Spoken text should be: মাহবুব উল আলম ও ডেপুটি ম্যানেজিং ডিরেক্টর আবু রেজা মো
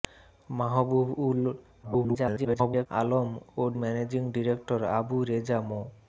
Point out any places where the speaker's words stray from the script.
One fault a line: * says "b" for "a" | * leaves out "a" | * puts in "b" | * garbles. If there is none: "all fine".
* garbles
* leaves out "ডেপুটি"